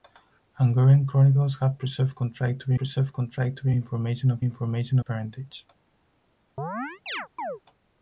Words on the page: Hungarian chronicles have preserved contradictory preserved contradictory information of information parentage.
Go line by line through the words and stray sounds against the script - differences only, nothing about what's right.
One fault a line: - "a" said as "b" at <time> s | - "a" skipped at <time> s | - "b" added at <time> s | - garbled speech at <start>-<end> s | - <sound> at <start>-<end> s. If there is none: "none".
- chirp at 6.6-7.6 s